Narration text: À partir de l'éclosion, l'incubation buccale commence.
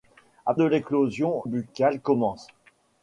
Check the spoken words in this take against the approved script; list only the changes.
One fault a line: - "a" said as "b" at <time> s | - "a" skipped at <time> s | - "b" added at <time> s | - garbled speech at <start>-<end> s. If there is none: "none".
- "partir" skipped at 0.6 s
- "l'incubation" skipped at 1.4 s